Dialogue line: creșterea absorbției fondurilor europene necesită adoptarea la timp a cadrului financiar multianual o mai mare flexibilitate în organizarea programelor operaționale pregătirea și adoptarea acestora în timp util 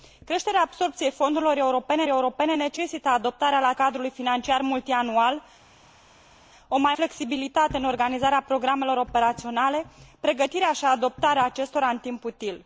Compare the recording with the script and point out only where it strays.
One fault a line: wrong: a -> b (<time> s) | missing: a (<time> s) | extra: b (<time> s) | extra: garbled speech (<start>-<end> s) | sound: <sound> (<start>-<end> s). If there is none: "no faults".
extra: europene (2.1 s)
missing: timp a (3.7 s)
missing: mare (6.9 s)